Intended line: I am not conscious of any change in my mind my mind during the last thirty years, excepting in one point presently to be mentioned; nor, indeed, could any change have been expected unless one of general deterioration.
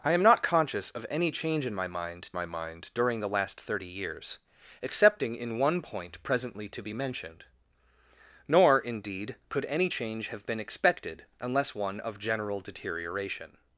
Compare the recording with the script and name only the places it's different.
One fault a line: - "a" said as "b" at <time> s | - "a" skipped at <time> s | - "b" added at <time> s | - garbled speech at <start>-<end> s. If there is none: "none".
none